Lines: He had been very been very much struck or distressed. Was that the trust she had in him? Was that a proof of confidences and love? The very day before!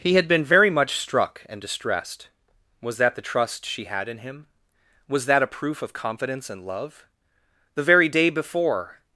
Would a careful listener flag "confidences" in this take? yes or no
yes